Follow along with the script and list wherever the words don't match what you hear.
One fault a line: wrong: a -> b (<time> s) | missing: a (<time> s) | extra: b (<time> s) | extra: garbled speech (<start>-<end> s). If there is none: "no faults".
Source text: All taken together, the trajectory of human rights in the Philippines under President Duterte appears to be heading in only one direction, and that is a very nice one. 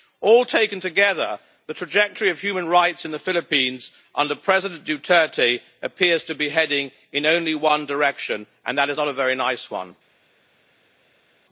extra: not (9.0 s)